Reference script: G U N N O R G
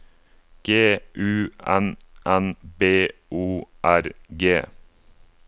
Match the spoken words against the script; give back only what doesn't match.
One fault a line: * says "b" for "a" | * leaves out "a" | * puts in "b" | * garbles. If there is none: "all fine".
* puts in "B"